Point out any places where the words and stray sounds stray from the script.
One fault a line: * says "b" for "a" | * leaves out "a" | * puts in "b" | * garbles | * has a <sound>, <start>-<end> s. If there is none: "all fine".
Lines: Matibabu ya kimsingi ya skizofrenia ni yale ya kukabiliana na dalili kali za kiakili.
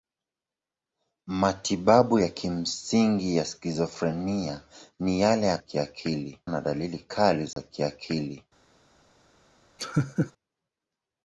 * says "kiakili" for "kukabiliana"
* has a dropout, 7.5-7.6 s
* has a laugh, 9.8-10.3 s